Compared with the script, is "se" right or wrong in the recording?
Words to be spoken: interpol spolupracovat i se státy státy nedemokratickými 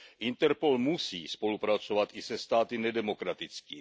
right